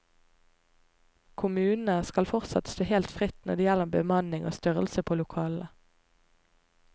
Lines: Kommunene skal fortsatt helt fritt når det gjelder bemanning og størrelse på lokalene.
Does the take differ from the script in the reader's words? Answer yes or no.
yes